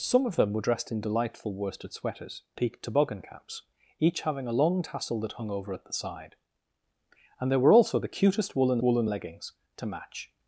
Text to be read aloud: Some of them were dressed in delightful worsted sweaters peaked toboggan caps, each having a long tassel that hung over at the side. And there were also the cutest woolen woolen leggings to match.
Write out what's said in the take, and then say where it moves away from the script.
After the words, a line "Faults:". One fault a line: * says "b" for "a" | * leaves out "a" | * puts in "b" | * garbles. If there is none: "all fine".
Some of them were dressed in delightful worsted sweaters peaked toboggan caps, each having a long tassel that hung over at the side. And there were also the cutest woolen woolen leggings to match.
Faults:
all fine